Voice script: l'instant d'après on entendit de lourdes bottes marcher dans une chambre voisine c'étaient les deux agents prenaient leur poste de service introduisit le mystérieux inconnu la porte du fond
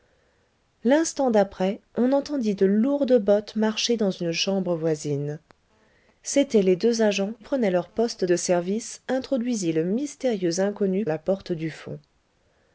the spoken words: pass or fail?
pass